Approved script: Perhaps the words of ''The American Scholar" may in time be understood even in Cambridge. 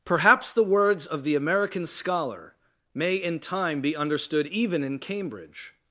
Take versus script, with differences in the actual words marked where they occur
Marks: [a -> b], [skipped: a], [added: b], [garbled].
Perhaps the words of ''The American Scholar" may in time be understood even in Cambridge.